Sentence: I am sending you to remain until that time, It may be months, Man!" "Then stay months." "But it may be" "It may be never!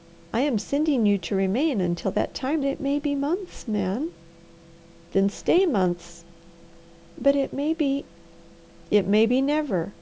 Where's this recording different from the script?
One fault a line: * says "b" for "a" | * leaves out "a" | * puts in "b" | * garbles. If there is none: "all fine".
all fine